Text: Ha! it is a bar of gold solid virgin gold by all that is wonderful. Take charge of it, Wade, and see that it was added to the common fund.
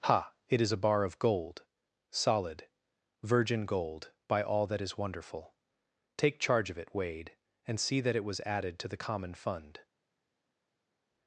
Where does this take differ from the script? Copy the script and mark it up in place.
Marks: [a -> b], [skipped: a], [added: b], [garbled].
Ha! it is a bar of gold solid virgin gold by all that is wonderful. Take charge of it, Wade, and see that it was added to the common fund.